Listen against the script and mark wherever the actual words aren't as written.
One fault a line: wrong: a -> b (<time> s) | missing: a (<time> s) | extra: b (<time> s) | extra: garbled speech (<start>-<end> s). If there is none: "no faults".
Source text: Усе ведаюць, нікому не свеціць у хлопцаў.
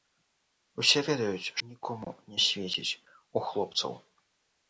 no faults